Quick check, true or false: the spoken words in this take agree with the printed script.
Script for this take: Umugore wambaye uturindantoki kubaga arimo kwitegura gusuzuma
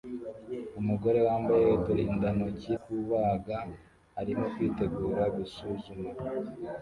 true